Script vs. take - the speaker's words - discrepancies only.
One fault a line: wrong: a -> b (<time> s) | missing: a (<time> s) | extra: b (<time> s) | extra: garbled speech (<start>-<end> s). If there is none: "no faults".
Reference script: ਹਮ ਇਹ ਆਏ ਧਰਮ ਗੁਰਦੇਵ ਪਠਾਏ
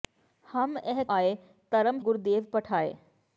no faults